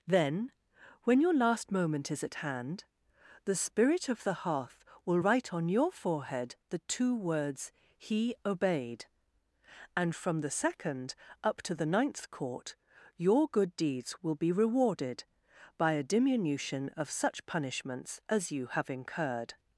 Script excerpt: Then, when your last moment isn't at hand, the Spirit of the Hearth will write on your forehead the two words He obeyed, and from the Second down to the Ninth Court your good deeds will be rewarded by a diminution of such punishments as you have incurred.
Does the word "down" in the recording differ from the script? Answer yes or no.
yes